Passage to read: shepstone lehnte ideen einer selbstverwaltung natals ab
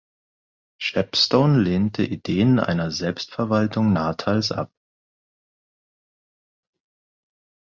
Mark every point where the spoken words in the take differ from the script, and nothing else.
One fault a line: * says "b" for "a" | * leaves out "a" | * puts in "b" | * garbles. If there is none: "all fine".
all fine